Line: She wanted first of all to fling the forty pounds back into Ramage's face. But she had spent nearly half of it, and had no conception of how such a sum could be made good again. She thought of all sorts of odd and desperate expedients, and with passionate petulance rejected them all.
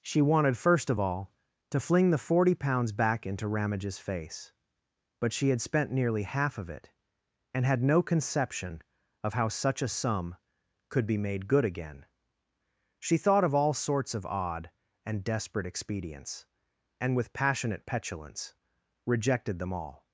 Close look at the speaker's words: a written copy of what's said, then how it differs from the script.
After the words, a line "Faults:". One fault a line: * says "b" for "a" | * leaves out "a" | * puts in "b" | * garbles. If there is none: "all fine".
She wanted first of all to fling the forty pounds back into Ramage's face. But she had spent nearly half of it, and had no conception of how such a sum could be made good again. She thought of all sorts of odd and desperate expedients, and with passionate petulance rejected them all.
Faults:
all fine